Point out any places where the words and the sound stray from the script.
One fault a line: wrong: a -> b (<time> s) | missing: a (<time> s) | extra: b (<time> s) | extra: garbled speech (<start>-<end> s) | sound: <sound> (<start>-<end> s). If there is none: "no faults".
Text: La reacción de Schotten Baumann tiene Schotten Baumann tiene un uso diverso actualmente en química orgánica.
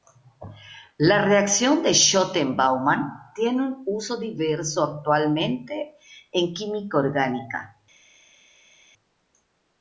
missing: Schotten Baumann tiene (3.6 s)